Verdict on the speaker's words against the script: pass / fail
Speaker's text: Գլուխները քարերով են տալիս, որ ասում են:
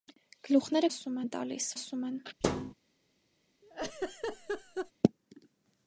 fail